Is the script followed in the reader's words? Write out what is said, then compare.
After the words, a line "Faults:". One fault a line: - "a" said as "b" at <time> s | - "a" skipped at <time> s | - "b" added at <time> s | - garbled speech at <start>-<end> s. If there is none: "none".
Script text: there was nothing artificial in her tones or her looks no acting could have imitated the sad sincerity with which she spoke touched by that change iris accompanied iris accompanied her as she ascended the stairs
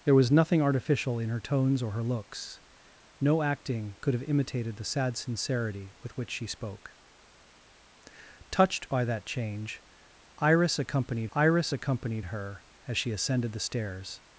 there was nothing artificial in her tones or her looks no acting could have imitated the sad sincerity with which she spoke touched by that change iris accompanied iris accompanied her as she ascended the stairs
Faults:
none